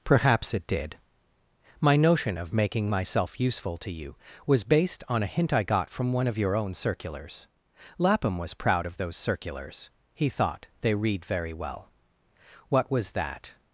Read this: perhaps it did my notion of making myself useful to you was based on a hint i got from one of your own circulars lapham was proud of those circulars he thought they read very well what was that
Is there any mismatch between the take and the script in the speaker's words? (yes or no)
no